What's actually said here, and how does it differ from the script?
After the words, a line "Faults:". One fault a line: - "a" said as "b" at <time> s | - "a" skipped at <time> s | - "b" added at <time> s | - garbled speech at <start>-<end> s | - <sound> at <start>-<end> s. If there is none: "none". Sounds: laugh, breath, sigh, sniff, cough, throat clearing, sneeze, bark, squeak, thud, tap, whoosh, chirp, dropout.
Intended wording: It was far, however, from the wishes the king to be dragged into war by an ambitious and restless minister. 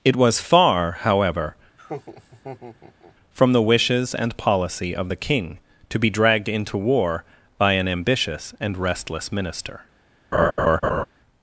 It was far, however, from the wishes and policy of the king to be dragged into war by an ambitious and restless minister.
Faults:
- laugh at 1.8-3.2 s
- "and policy of" added at 4.1 s
- laugh at 10.3-11.0 s